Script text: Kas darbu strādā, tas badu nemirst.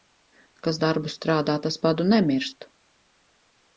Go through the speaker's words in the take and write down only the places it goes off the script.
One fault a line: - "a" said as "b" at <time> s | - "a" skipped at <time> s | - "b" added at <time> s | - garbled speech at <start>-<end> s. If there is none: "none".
none